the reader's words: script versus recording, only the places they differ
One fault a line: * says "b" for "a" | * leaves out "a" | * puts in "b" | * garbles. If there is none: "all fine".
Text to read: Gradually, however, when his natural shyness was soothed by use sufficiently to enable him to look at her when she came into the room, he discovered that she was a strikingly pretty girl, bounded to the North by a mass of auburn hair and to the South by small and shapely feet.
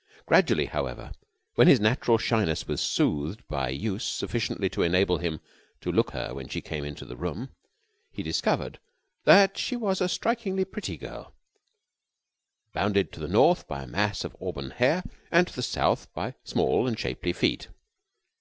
* leaves out "at"